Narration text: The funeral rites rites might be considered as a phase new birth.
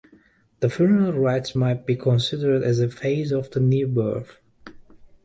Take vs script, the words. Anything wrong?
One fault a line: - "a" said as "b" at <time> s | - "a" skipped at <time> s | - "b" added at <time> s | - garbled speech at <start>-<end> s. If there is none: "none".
- "rites" skipped at 1.6 s
- "of the" added at 3.3 s